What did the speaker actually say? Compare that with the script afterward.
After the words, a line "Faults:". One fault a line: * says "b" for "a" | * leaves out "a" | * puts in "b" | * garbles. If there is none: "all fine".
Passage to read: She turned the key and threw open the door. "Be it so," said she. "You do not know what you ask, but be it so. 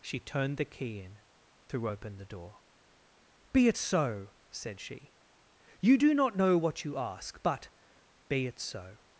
She turned the key in threw open the door. "Be it so," said she. "You do not know what you ask, but be it so.
Faults:
* says "in" for "and"